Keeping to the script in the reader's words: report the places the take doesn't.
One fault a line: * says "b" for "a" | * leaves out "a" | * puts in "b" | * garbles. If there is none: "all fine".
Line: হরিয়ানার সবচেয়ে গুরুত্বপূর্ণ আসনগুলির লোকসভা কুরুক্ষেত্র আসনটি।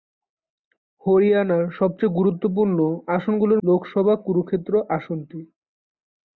all fine